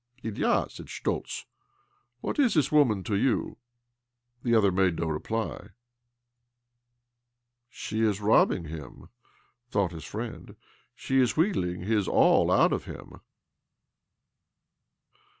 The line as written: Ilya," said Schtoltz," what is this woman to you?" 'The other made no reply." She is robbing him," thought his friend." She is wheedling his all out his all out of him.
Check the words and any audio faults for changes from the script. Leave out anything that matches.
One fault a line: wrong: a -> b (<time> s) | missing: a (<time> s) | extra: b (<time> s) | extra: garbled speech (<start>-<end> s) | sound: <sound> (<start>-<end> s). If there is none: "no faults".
missing: his all out (12.7 s)